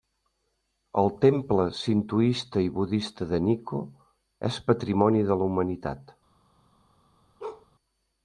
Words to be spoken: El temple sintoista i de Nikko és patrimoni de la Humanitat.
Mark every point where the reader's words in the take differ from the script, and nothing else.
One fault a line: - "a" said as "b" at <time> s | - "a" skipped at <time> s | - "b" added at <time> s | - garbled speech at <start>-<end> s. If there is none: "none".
- "budista" added at 2.8 s